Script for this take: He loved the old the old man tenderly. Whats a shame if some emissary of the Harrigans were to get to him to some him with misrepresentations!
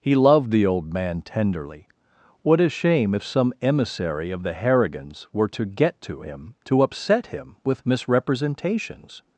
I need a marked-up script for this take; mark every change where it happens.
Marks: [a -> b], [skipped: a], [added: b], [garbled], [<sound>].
He loved the old [skipped: the old] man tenderly. [Whats -> What] a shame if some emissary of the Harrigans were to get to him to [some -> upset] him with misrepresentations!